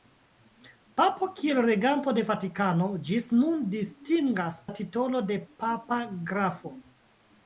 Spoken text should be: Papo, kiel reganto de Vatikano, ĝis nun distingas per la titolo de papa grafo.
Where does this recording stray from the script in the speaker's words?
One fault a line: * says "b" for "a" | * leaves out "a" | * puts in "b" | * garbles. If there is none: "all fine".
* leaves out "per"